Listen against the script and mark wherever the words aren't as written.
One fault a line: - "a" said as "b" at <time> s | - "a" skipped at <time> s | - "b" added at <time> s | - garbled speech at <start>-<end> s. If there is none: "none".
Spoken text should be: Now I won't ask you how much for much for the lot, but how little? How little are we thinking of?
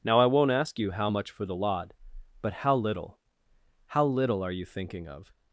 - "much for" skipped at 1.4 s
- "we" said as "you" at 4.5 s